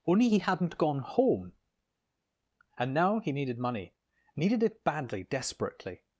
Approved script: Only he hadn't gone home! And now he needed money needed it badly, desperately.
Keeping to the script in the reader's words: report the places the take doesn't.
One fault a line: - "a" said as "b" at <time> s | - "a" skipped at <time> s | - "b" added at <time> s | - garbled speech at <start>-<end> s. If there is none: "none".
none